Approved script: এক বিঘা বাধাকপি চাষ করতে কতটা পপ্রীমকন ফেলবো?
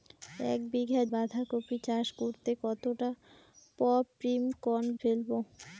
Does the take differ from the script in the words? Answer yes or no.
no